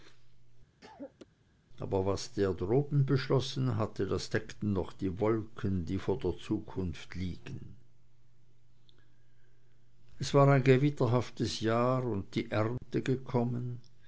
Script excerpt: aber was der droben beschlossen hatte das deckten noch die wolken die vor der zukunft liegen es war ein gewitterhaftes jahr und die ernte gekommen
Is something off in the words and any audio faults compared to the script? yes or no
yes